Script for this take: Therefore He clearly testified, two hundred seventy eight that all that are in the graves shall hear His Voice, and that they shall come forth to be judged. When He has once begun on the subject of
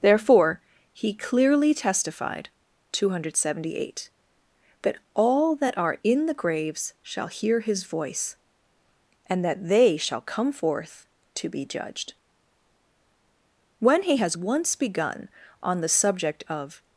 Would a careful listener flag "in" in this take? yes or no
no